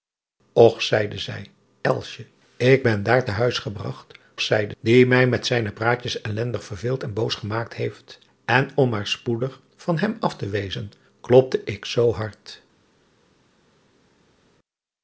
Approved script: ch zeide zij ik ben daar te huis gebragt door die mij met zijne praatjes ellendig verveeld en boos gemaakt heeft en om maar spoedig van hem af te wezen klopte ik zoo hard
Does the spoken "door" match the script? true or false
false